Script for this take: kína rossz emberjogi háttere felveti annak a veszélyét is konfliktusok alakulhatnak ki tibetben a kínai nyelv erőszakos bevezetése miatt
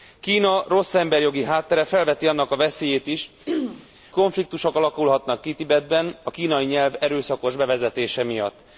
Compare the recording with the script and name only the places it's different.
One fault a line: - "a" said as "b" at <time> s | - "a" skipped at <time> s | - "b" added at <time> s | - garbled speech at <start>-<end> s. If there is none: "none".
none